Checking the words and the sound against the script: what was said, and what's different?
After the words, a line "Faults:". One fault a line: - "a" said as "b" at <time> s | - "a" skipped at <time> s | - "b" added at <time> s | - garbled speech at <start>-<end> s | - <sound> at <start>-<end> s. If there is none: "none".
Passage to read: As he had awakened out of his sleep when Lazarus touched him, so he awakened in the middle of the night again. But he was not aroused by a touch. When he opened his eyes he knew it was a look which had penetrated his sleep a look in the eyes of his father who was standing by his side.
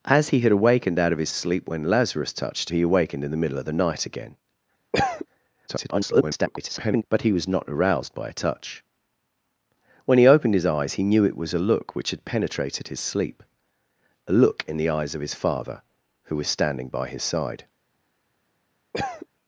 As he had awakened out of his sleep when Lazarus touched he awakened in the middle of the night again. [garbled] But he was not aroused by a touch. When he opened his eyes he knew it was a look which had penetrated his sleep a look in the eyes of his father who was standing by his side.
Faults:
- "him so" skipped at 2.7 s
- cough at 4.9-5.3 s
- garbled speech at 5.7-7.0 s
- cough at 18.9-19.3 s